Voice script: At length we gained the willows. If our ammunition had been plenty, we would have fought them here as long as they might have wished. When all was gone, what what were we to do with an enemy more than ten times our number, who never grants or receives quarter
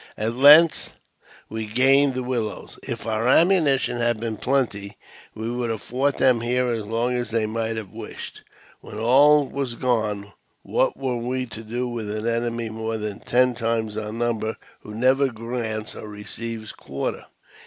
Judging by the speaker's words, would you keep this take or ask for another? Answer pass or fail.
fail